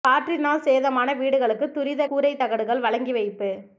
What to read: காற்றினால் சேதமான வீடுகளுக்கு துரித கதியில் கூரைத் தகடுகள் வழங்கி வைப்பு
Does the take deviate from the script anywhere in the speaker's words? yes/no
yes